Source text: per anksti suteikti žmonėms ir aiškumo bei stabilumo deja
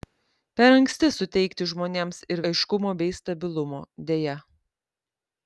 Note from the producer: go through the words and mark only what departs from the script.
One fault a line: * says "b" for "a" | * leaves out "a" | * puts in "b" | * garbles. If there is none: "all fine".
all fine